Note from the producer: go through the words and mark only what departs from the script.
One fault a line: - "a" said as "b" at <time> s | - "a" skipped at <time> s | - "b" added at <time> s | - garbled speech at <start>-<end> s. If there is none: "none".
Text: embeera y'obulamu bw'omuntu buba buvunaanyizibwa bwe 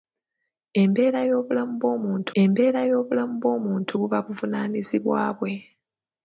- "embeera y'obulamu bw'omuntu" added at 2.4 s